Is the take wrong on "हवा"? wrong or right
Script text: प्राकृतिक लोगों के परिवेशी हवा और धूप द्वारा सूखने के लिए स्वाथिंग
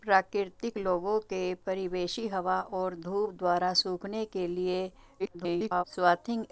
right